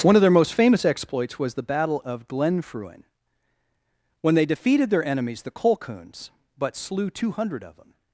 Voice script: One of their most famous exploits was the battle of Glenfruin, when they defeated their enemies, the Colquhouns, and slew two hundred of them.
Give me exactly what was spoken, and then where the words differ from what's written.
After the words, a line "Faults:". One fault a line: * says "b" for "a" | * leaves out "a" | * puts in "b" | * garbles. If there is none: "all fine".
One of their most famous exploits was the battle of Glenfruin, when they defeated their enemies, the Colquhouns, but slew two hundred of them.
Faults:
* says "but" for "and"